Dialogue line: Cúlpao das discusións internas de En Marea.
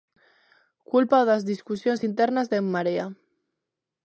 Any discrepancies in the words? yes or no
no